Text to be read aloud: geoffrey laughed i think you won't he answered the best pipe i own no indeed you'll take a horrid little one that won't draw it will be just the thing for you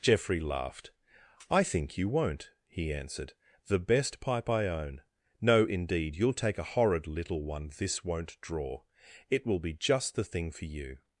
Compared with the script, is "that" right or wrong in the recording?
wrong